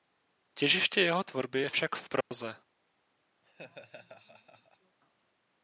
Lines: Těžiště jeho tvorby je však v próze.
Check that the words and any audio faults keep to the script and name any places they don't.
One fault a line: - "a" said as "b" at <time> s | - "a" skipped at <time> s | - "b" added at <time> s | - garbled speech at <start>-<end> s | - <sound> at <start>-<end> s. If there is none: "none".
- dropout at 2.2-2.3 s
- laugh at 3.4-5.0 s